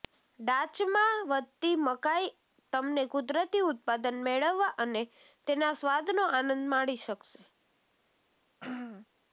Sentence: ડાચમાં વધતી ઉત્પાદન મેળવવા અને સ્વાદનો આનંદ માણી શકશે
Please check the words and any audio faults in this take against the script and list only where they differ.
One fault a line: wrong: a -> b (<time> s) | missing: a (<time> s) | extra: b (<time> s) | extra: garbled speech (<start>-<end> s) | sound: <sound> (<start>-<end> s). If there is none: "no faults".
extra: મકાઈ તમને કુદરતી (1.8 s)
extra: તેના (5.5 s)
sound: throat clearing (8.6-9.1 s)